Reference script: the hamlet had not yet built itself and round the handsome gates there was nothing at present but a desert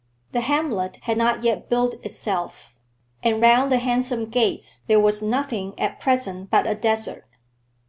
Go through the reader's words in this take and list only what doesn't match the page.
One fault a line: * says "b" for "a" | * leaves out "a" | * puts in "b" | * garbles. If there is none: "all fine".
all fine